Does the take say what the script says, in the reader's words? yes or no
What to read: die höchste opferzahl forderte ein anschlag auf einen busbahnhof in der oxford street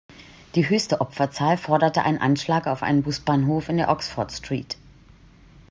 yes